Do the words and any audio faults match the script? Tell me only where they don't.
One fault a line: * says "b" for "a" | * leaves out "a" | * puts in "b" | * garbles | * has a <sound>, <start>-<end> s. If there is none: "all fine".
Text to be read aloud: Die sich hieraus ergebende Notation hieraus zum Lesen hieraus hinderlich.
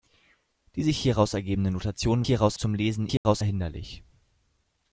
* has a dropout, 3.2-3.3 s